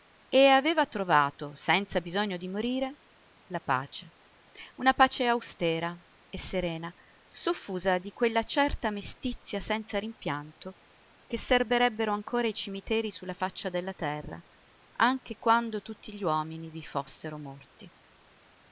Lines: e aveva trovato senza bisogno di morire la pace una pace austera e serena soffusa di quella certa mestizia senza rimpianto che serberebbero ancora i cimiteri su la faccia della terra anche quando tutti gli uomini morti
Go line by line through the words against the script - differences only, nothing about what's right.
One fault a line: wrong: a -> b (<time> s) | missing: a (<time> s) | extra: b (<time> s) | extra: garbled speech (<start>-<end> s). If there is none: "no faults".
extra: vi fossero (16.7 s)